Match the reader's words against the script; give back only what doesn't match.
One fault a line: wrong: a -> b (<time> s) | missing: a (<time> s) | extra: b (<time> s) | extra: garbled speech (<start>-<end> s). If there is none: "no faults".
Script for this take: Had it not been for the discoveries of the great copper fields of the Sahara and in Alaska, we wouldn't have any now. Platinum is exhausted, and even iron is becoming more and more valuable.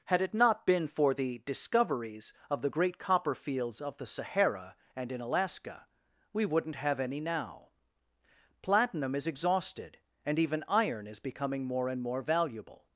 no faults